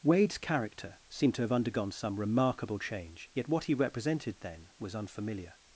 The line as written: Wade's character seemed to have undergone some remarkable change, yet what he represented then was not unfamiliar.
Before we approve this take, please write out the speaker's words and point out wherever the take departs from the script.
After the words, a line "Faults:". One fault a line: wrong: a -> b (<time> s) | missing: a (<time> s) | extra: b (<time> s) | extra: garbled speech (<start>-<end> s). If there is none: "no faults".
Wade's character seemed to have undergone some remarkable change, yet what he represented then was unfamiliar.
Faults:
missing: not (5.0 s)